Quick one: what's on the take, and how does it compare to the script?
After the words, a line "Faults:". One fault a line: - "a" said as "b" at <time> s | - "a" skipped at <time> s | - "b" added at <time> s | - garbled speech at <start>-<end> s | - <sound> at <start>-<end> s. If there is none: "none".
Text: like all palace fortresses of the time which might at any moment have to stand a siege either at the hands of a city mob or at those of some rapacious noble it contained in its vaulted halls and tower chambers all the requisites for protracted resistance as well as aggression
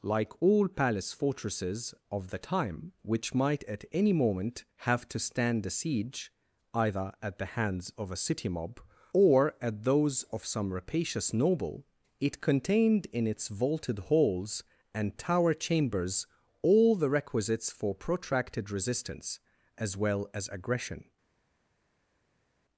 like all palace fortresses of the time which might at any moment have to stand a siege either at the hands of a city mob or at those of some rapacious noble it contained in its vaulted halls and tower chambers all the requisites for protracted resistance as well as aggression
Faults:
none